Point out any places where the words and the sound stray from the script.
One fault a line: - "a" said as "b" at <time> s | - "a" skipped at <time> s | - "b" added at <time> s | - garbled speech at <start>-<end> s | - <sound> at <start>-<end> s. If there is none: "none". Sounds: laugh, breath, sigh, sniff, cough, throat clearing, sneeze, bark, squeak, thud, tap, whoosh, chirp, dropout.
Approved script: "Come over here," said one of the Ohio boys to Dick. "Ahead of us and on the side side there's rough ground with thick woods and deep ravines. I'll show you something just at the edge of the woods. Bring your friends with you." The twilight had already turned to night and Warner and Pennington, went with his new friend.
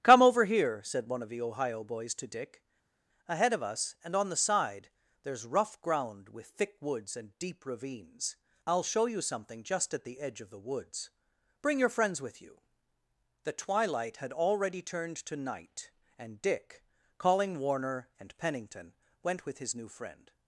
- "side" skipped at 4.9 s
- "Dick calling" added at 16.4 s